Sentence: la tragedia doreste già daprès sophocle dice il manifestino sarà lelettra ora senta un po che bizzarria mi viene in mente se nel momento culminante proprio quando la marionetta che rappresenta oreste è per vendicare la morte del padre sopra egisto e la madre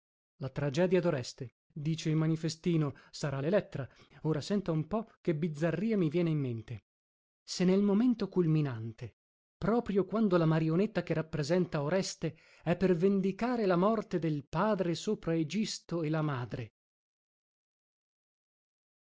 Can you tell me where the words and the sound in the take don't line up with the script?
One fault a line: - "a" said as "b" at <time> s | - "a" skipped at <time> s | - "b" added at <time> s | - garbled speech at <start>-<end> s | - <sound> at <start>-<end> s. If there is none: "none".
- "già daprès sophocle" skipped at 1.6 s